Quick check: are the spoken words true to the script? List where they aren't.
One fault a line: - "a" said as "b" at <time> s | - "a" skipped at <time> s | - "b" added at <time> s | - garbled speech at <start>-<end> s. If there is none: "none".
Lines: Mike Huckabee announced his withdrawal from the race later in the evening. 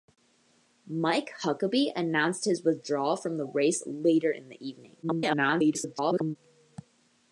- garbled speech at 5.0-6.4 s